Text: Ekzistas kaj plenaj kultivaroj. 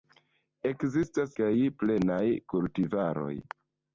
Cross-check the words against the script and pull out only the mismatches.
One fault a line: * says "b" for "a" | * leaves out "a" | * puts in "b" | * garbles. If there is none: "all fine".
all fine